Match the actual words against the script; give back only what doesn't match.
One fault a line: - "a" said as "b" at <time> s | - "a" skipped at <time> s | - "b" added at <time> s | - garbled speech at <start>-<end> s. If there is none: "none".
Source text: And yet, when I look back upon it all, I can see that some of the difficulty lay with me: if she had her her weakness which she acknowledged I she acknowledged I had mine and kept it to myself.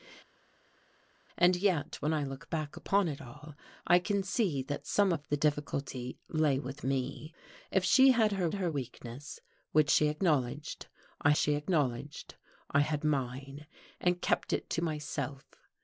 none